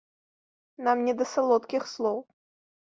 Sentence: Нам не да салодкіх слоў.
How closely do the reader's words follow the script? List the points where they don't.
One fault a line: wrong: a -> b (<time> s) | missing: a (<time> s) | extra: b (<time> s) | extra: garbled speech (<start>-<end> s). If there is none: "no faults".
no faults